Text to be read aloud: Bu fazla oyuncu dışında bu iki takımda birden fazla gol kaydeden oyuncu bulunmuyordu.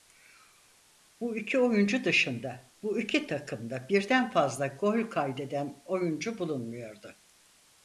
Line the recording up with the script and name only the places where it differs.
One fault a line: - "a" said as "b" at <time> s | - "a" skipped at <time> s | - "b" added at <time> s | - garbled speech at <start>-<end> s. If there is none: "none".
- "fazla" said as "iki" at 1.4 s